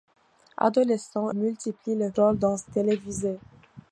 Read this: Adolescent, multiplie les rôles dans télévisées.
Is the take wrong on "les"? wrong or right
right